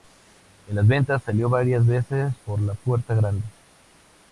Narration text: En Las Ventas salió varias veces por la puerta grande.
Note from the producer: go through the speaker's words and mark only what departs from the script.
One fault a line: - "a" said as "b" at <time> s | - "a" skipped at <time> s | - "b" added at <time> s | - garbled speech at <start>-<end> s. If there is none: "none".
none